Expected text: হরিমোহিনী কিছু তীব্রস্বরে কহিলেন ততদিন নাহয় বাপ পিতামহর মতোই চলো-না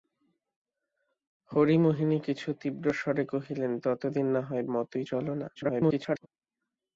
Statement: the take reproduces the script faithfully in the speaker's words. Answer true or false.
false